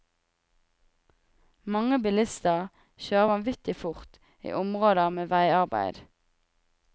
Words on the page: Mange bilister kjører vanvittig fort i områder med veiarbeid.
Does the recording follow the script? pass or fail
pass